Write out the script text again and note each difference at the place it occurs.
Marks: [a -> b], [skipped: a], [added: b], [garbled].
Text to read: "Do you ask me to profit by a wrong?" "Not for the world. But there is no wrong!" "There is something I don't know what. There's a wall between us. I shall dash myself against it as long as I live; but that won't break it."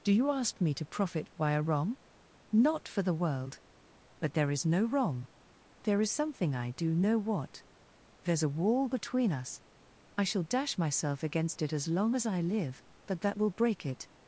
"Do you ask me to profit by a wrong?" "Not for the world. But there is no wrong!" "There is something I [don't -> do] know what. There's a wall between us. I shall dash myself against it as long as I live; but that [won't -> will] break it."